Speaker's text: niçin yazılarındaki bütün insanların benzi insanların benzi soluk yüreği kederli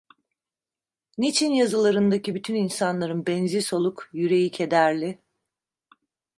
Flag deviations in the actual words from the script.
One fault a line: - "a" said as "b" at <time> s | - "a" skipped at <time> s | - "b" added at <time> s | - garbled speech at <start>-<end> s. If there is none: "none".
- "insanların benzi" skipped at 3.6 s